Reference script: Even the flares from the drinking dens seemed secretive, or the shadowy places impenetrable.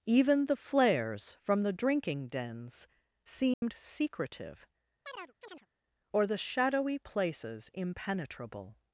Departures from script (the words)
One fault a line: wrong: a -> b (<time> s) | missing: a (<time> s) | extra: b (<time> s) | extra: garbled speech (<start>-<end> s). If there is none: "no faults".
no faults